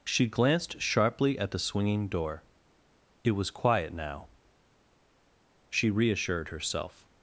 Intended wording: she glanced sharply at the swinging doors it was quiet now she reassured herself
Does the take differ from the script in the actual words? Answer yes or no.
yes